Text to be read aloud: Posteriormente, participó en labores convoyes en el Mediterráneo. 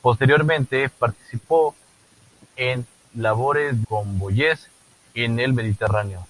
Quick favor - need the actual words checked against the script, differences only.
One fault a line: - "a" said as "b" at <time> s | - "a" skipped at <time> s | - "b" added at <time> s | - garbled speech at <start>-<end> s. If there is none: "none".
none